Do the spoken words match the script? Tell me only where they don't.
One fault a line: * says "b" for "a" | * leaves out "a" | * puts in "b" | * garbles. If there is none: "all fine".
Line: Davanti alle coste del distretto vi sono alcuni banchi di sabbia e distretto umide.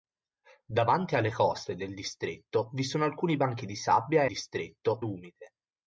all fine